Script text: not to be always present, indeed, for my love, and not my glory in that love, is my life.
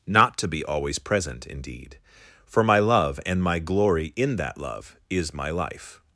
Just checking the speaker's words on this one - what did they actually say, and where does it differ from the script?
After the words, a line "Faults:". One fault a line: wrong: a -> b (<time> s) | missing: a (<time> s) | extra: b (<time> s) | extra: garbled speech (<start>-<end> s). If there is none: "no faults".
not to be always present, indeed, for my love, and my glory in that love, is my life.
Faults:
missing: not (3.4 s)